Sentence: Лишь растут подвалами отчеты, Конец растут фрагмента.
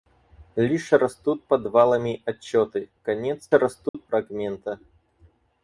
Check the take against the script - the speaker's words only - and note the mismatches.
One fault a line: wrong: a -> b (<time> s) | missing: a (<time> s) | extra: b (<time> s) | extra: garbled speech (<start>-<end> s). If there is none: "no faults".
no faults